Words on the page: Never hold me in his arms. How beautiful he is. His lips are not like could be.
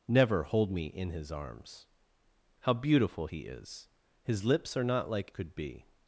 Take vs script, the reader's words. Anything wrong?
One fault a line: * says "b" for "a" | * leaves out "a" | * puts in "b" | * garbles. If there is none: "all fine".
all fine